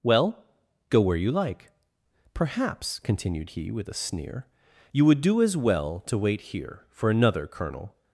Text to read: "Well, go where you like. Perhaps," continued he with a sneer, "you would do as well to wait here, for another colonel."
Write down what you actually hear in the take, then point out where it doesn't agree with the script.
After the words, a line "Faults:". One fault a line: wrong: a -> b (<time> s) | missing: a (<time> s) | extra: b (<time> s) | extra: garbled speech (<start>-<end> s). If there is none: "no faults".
"Well, go where you like. Perhaps," continued he with a sneer, "you would do as well to wait here, for another colonel."
Faults:
no faults